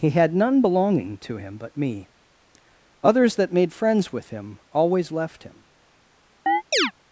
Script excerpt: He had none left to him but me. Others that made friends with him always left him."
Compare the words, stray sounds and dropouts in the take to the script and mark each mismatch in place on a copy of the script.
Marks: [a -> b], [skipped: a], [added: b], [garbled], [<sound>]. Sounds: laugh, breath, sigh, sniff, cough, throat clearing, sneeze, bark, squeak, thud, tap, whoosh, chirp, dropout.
He had none [left -> belonging] to him but me. Others that made friends with him always left him." [chirp]